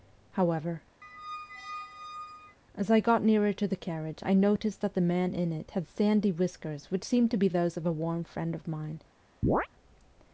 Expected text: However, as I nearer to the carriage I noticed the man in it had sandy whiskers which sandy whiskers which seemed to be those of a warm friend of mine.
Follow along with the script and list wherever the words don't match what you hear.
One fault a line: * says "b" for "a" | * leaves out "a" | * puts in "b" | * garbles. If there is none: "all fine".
* puts in "got"
* puts in "that"
* leaves out "sandy whiskers which"